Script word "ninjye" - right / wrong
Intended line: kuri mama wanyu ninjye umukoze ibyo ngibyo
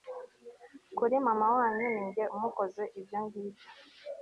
right